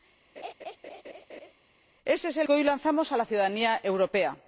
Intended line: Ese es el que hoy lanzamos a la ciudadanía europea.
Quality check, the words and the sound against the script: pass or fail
fail